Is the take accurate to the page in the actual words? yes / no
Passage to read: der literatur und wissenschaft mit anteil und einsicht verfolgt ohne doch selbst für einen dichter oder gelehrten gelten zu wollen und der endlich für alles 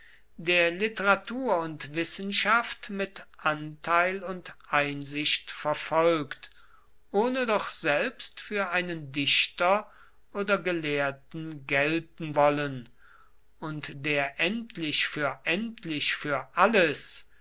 no